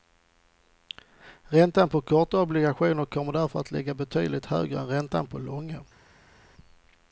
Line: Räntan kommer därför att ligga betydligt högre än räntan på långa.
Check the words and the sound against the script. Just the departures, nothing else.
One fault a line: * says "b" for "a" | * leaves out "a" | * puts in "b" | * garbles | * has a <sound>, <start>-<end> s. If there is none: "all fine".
* puts in "på korta obligationer"